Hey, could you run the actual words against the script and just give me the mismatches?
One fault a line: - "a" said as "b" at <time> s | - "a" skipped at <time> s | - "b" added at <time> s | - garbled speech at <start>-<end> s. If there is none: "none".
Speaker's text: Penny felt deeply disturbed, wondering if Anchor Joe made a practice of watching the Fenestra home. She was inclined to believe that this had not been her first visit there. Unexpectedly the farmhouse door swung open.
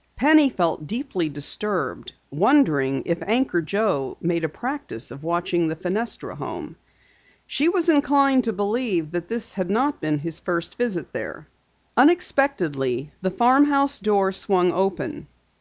- "her" said as "his" at 10.2 s